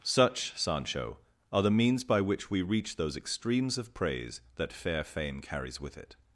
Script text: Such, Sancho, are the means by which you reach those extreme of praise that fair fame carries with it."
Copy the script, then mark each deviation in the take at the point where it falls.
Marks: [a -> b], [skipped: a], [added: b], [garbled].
Such, Sancho, are the means by which [you -> we] reach those [extreme -> extremes] of praise that fair fame carries with it."